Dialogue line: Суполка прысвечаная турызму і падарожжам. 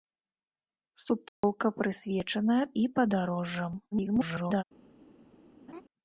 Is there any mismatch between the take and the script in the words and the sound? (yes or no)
yes